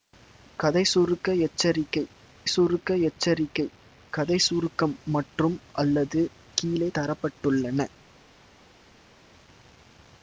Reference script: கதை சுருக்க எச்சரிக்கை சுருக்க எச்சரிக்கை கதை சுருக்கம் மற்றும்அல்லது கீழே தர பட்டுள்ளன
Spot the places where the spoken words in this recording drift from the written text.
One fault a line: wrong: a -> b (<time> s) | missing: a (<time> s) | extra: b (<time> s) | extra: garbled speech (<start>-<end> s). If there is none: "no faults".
no faults